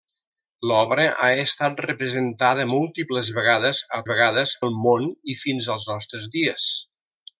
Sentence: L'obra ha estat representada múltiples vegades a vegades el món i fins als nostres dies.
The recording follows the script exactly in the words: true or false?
true